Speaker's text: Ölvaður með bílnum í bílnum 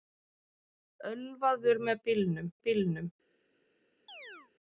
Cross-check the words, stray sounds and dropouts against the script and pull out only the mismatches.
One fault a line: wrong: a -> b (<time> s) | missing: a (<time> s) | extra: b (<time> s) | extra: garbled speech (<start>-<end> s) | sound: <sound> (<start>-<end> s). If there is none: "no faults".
sound: chirp (4.1-4.5 s)